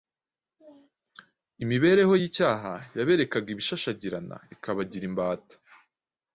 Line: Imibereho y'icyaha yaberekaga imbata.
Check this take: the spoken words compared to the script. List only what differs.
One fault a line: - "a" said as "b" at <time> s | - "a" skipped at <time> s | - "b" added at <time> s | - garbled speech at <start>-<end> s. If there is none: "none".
- "ibishashagirana ikabagira" added at 3.5 s